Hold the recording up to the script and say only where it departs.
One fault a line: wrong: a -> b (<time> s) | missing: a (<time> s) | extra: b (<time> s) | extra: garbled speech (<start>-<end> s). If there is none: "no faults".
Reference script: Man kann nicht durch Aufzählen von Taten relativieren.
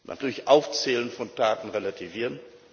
missing: kann nicht (0.2 s)